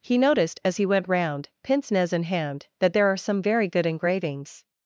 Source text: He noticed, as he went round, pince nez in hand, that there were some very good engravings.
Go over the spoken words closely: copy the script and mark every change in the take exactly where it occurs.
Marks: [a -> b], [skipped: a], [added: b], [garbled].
He noticed, as he went round, pince nez in hand, that there [were -> are] some very good engravings.